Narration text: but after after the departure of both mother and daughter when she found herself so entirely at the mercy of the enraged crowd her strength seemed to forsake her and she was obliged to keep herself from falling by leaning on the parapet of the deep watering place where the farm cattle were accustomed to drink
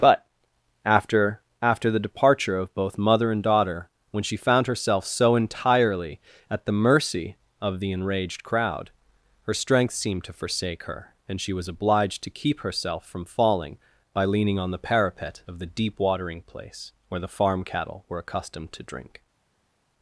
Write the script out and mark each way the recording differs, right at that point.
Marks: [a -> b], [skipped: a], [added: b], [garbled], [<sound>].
but after after the departure of both mother and daughter when she found herself so entirely at the mercy of the enraged crowd her strength seemed to forsake her and she was obliged to keep herself from falling by leaning on the parapet of the deep watering place where the farm cattle were accustomed to drink